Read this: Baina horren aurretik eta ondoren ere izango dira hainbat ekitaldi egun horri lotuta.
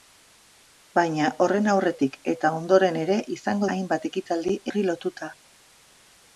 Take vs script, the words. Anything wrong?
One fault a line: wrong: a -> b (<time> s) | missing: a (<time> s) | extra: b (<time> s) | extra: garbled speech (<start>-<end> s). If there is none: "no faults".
missing: dira (3.7 s)
missing: egun (4.5 s)